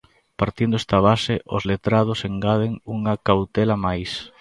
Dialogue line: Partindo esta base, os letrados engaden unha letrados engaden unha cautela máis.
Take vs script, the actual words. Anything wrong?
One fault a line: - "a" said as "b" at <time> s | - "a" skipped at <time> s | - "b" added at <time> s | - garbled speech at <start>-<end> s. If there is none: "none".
- "letrados engaden unha" skipped at 3.1 s